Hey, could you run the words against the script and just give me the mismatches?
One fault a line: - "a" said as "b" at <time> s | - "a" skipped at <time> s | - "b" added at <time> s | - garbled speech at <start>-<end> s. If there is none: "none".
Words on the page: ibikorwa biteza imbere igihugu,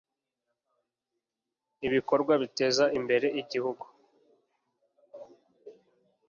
none